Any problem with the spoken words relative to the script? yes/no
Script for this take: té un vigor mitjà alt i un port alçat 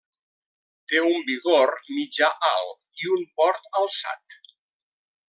no